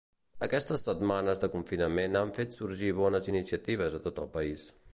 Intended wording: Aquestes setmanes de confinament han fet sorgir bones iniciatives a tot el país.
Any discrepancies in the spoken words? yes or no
no